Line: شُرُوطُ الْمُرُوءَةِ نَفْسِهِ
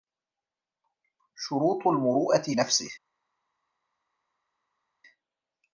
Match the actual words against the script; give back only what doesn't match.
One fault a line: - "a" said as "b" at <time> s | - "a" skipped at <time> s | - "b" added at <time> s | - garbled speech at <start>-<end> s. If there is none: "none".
none